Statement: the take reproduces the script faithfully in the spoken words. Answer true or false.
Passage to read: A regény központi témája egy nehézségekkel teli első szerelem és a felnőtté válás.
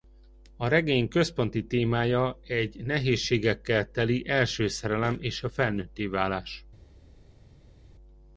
true